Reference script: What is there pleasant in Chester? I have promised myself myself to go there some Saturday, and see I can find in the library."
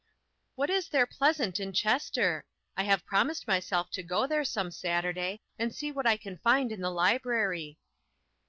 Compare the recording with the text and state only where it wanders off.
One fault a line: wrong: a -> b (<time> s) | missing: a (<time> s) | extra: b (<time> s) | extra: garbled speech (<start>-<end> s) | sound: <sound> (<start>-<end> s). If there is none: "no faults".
missing: myself (3.9 s)
extra: what (5.9 s)